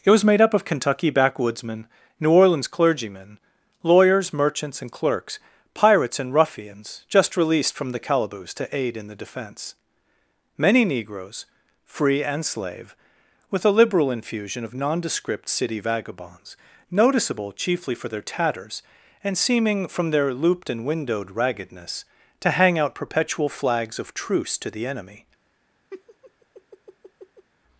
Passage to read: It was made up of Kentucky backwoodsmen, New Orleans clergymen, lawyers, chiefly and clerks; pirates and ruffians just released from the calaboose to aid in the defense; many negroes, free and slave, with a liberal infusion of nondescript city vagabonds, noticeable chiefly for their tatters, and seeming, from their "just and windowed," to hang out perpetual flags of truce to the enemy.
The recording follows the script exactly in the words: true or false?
false